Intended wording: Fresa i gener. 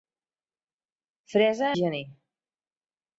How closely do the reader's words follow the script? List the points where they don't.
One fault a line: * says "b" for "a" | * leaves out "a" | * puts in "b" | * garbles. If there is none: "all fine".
all fine